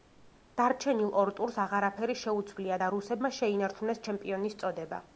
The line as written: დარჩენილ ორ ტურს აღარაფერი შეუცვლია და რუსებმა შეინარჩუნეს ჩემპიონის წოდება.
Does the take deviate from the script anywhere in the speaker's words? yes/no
no